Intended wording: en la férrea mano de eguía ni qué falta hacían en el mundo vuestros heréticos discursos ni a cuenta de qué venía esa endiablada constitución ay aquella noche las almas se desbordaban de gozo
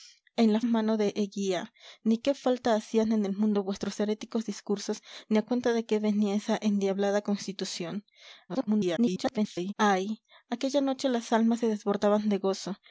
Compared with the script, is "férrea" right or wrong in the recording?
wrong